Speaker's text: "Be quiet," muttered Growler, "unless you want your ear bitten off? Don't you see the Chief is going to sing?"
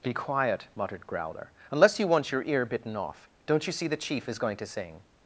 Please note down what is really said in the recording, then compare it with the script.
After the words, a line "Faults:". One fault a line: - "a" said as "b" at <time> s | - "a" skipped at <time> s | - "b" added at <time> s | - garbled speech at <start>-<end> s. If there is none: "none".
"Be quiet," muttered Growler, "unless you want your ear bitten off? Don't you see the Chief is going to sing?"
Faults:
none